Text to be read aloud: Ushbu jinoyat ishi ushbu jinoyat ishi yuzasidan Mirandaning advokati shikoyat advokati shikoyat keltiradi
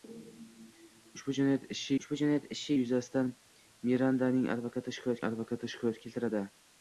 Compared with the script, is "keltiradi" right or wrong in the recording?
right